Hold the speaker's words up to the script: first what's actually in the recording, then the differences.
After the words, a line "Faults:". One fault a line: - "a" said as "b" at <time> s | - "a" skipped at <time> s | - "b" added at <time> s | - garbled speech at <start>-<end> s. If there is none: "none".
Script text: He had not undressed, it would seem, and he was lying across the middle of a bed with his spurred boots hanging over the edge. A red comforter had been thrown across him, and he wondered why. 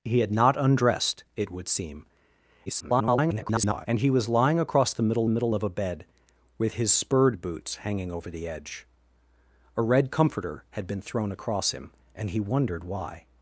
He had not undressed, it would seem, [garbled] and he was lying across the middle middle of a bed with his spurred boots hanging over the edge. A red comforter had been thrown across him, and he wondered why.
Faults:
- garbled speech at 2.7-3.9 s
- "middle" added at 5.3 s